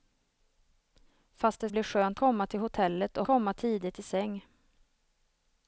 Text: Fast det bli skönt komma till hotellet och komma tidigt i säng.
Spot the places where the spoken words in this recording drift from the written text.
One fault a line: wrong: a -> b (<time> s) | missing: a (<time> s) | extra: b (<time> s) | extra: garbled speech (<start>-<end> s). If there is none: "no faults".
no faults